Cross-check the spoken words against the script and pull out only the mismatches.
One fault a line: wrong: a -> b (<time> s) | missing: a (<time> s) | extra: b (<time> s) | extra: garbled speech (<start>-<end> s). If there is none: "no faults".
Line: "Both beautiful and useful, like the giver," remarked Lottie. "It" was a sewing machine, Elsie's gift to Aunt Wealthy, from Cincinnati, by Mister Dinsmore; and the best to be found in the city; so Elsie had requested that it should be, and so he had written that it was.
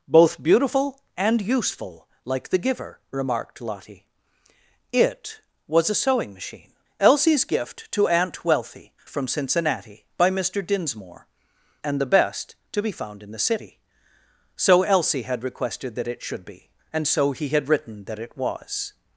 no faults